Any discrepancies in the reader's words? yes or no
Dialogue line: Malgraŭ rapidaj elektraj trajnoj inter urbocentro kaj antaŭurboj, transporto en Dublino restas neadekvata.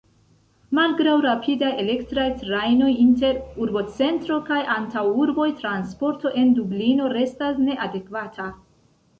no